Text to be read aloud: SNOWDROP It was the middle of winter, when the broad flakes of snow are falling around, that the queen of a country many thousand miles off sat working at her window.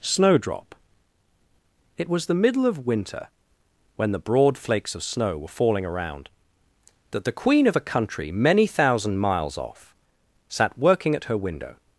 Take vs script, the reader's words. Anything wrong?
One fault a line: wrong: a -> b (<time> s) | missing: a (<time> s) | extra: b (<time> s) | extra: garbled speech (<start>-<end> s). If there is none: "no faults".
wrong: are -> were (5.4 s)